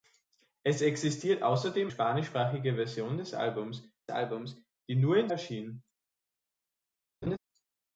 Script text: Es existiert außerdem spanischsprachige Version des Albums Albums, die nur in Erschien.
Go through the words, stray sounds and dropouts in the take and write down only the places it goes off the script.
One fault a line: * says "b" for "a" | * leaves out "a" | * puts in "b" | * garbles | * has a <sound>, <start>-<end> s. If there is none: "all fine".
* has a laugh, 7.2-7.4 s